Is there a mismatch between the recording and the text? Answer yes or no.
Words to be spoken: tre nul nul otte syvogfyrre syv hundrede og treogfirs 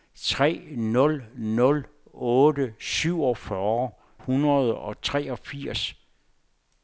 yes